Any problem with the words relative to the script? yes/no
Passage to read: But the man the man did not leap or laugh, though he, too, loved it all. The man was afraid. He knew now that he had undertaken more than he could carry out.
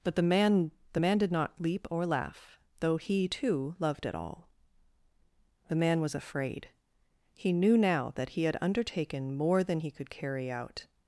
no